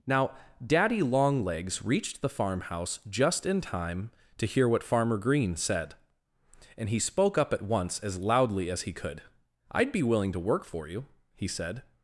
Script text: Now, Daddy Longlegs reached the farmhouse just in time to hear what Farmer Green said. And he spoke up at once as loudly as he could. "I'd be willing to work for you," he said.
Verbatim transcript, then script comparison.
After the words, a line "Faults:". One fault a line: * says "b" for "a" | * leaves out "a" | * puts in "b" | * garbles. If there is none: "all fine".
Now, Daddy Longlegs reached the farmhouse just in time to hear what Farmer Green said. And he spoke up at once as loudly as he could. "I'd be willing to work for you," he said.
Faults:
all fine